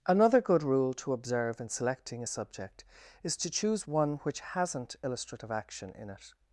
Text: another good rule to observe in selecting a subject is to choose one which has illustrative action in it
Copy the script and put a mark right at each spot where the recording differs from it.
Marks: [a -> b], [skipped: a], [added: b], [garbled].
another good rule to observe in selecting a subject is to choose one which [has -> hasn't] illustrative action in it